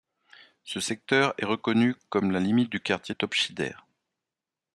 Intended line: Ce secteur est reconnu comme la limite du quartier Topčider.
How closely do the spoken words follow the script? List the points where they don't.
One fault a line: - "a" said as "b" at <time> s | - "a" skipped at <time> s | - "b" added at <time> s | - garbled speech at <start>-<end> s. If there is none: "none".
none